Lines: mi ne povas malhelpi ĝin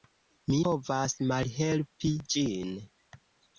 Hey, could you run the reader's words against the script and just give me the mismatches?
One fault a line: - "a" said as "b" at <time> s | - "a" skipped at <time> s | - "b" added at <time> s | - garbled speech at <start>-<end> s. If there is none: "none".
- "ne" skipped at 0.6 s